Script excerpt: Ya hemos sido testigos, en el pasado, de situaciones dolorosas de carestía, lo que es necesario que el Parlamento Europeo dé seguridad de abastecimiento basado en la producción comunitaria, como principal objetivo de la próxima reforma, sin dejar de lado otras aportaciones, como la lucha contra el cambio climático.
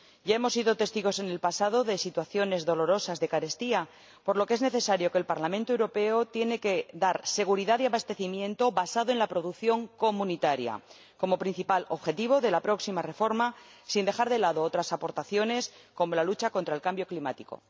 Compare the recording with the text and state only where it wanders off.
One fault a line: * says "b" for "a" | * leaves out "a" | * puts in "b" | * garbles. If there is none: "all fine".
* puts in "por"